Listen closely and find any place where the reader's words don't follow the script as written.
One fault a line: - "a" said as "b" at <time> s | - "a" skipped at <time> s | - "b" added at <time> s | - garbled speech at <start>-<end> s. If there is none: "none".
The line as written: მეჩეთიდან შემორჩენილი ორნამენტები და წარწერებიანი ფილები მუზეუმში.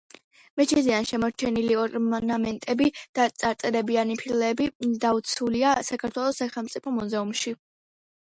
- "დაცულია საქართველოს სახელმწიფო" added at 5.1 s